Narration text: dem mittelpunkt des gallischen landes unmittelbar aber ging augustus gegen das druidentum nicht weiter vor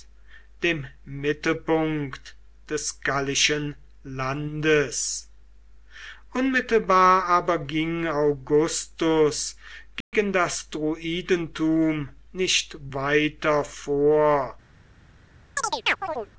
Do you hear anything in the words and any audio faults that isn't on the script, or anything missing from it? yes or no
yes